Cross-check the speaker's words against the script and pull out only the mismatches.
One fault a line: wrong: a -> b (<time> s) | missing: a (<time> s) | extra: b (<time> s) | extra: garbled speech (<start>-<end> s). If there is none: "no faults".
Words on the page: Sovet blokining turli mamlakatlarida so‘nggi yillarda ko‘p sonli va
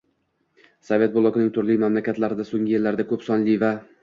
no faults